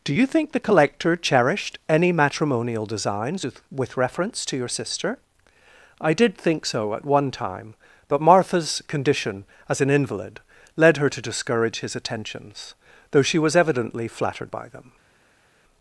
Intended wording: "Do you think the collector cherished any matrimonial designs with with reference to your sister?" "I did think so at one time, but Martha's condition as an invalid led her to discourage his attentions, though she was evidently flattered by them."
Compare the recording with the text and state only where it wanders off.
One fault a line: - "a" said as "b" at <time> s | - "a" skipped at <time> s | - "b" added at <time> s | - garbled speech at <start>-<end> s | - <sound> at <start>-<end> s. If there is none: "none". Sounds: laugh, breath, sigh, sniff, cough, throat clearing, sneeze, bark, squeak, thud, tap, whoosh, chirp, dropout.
none